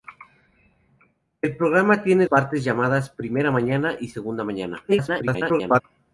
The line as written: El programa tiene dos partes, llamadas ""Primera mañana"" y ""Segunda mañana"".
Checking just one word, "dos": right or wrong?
wrong